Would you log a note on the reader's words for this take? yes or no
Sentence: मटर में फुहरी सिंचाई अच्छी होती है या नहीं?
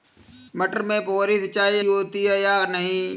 yes